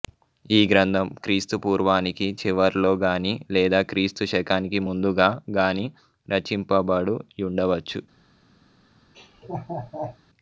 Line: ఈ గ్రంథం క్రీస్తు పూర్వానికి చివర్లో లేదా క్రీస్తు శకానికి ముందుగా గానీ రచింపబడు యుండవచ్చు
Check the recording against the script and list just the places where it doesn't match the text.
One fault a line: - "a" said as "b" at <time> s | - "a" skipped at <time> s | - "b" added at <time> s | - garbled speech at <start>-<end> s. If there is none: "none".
- "గానీ" added at 3.0 s